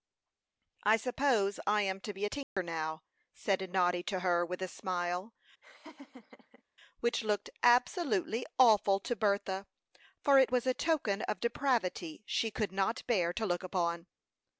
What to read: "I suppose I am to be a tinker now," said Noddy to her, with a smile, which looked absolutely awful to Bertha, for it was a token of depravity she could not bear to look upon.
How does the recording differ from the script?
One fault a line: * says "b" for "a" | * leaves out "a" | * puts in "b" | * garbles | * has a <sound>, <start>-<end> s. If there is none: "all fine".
* has a dropout, 2.4-2.6 s
* has a laugh, 5.6-6.6 s